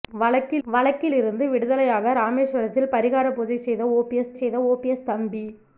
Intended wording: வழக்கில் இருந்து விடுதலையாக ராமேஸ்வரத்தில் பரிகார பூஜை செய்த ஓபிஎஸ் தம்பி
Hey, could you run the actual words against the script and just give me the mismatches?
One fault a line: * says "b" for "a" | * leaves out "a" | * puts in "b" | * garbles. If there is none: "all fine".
* puts in "வழக்கில்"
* puts in "செய்த ஓபிஎஸ்"